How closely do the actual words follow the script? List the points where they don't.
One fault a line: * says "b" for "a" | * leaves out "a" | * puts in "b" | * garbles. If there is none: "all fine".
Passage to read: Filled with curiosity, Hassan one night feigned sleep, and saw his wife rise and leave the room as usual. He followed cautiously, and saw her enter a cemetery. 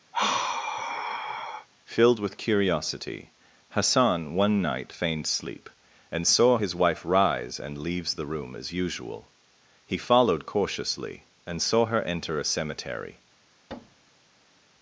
* says "leaves" for "leave"